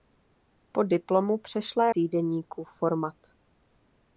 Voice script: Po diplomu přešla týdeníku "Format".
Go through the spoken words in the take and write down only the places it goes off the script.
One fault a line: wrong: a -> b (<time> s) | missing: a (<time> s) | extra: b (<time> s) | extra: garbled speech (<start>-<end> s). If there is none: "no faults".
no faults